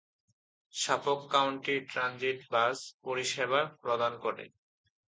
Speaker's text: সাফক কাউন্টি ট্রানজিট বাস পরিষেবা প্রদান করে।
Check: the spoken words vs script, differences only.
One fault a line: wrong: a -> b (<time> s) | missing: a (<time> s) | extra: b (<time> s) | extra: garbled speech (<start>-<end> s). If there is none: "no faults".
no faults